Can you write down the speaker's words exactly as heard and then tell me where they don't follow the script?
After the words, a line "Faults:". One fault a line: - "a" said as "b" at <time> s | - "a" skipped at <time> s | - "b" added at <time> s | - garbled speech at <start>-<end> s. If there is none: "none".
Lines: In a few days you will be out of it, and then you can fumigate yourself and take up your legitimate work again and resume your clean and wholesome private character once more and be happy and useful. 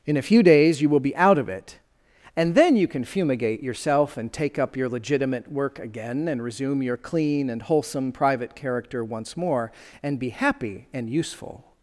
In a few days you will be out of it, and then you can fumigate yourself and take up your legitimate work again and resume your clean and wholesome private character once more and be happy and useful.
Faults:
none